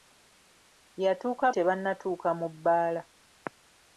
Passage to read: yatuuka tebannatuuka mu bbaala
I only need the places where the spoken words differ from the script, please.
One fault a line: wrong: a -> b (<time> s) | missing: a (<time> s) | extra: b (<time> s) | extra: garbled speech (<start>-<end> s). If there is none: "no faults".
no faults